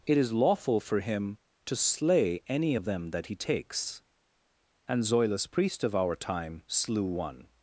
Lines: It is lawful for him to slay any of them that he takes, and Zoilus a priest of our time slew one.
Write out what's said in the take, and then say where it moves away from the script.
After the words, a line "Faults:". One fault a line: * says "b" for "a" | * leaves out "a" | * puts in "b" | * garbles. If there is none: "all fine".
It is lawful for him to slay any of them that he takes, and Zoilus priest of our time slew one.
Faults:
* leaves out "a"